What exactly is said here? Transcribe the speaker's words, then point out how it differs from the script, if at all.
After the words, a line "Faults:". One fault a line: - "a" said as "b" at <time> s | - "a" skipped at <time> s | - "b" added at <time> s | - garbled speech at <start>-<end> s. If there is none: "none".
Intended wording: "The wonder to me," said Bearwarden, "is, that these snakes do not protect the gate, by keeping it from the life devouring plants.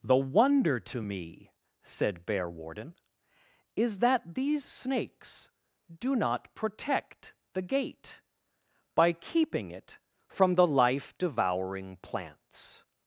"The wonder to me," said Bearwarden, "is, that these snakes do not protect the gate, by keeping it from the life devouring plants.
Faults:
none